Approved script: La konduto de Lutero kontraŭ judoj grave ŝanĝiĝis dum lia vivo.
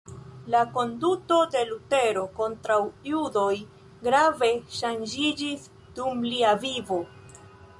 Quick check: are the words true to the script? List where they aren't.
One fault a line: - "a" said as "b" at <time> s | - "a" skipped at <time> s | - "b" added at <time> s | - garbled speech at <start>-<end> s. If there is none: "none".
none